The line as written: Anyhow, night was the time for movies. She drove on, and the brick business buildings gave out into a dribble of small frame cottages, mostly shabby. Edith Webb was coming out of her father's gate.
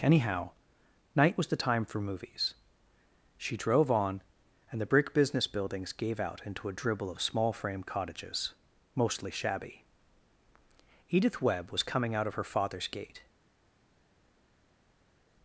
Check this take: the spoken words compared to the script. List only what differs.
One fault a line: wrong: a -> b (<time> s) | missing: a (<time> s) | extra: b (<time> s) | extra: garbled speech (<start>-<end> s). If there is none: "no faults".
no faults